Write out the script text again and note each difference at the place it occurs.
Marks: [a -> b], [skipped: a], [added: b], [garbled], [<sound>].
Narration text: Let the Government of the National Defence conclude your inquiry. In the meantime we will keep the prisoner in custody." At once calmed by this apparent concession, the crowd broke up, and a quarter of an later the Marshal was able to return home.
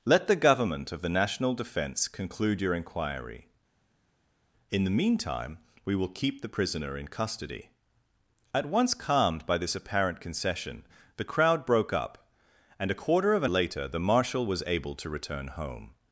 Let the Government of the National Defence conclude your inquiry. In the meantime we will keep the prisoner in custody." At once calmed by this apparent concession, the crowd broke up, and a quarter of an later the Marshal was able to return home.